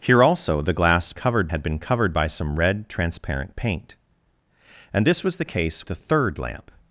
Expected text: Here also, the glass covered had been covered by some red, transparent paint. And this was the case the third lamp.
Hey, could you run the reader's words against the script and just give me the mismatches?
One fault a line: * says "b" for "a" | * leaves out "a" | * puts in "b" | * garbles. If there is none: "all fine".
all fine